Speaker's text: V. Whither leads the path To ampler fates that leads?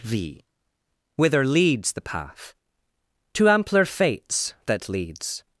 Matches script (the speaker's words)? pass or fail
pass